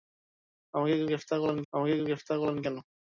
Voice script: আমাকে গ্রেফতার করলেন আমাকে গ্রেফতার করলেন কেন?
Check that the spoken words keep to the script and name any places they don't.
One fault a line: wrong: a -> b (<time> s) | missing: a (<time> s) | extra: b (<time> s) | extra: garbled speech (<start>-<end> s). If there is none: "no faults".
no faults